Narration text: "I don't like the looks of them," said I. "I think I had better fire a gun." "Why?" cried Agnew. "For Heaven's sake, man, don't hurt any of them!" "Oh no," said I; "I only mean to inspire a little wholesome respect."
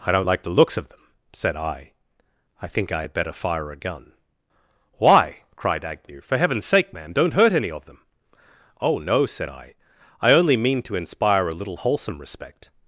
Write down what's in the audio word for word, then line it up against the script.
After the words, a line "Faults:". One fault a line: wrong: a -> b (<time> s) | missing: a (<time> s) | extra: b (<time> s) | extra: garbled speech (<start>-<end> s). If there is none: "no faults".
"I don't like the looks of them," said I. "I think I had better fire a gun." "Why?" cried Agnew. "For Heaven's sake, man, don't hurt any of them!" "Oh no," said I; "I only mean to inspire a little wholesome respect."
Faults:
no faults